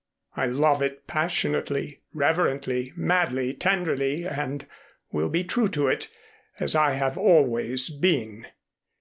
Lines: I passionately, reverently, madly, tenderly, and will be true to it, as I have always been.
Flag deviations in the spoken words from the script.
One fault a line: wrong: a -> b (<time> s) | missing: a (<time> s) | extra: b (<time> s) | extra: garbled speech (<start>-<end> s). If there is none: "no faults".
extra: love it (0.5 s)